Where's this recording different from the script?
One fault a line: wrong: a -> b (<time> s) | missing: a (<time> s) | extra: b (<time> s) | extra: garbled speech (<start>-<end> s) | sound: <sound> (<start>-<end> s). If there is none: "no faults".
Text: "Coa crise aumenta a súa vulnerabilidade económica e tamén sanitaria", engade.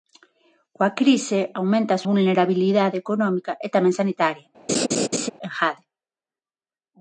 missing: súa (2.0 s)
sound: laugh (4.7-5.3 s)